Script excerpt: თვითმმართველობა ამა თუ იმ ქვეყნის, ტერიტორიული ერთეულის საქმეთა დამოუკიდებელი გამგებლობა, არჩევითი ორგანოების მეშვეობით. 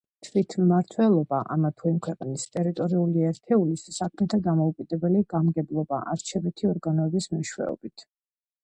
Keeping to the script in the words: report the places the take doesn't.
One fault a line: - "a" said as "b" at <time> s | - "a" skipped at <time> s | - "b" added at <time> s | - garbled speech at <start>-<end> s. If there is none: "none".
none